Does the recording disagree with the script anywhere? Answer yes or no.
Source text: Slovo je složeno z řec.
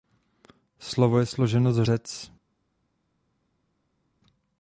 no